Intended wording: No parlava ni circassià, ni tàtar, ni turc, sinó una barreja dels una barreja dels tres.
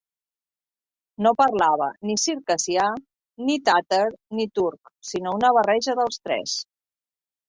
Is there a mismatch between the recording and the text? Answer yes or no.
yes